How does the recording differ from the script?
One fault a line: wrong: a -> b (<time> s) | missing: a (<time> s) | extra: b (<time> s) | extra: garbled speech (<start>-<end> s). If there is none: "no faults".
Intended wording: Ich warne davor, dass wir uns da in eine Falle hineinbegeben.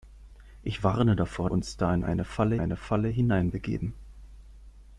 missing: dass wir (1.5 s)
extra: eine Falle (2.5 s)